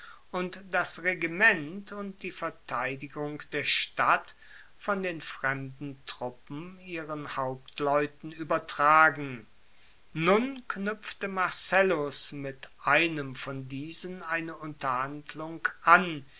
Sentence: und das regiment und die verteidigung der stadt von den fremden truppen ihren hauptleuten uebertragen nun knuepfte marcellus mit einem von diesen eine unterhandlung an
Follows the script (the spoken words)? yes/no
yes